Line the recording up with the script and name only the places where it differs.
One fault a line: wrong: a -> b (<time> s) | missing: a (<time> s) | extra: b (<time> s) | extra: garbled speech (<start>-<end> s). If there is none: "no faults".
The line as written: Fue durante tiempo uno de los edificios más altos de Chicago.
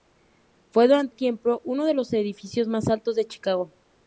no faults